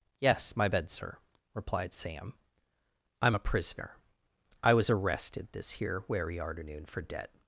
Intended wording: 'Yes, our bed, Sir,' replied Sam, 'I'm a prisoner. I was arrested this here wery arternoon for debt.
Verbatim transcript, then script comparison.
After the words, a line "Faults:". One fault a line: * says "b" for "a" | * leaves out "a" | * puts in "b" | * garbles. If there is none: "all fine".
'Yes, my bed, Sir,' replied Sam, 'I'm a prisoner. I was arrested this here wery arternoon for debt.
Faults:
* says "my" for "our"